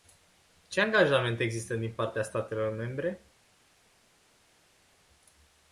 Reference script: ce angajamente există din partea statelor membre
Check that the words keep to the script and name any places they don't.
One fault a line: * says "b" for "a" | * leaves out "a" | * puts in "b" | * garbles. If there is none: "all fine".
all fine